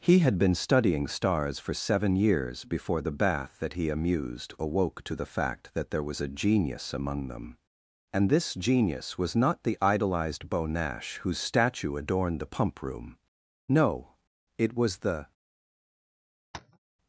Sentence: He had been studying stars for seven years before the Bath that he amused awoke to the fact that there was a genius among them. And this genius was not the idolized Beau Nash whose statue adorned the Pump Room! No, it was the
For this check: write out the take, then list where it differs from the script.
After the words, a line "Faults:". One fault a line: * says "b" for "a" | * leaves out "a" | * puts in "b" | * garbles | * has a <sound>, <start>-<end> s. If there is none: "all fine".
He had been studying stars for seven years before the Bath that he amused awoke to the fact that there was a genius among them. And this genius was not the idolized Beau Nash whose statue adorned the Pump Room! No, it was the
Faults:
* has a tap, 16.5-16.8 s